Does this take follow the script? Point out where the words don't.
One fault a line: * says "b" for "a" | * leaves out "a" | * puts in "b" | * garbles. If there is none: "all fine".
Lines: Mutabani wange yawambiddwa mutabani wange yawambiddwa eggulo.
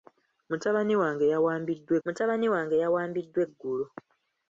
all fine